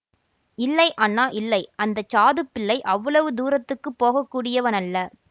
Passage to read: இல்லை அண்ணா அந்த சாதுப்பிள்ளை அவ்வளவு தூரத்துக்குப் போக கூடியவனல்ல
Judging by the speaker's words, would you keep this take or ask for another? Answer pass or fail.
fail